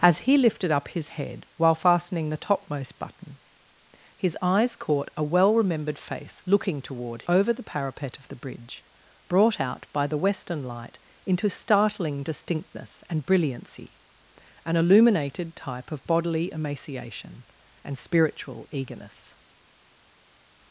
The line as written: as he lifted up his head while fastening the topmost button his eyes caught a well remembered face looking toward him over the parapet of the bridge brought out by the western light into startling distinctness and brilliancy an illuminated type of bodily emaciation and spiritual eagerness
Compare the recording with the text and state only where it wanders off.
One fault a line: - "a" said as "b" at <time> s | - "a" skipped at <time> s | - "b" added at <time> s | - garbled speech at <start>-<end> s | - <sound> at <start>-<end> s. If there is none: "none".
- "him" skipped at 7.2 s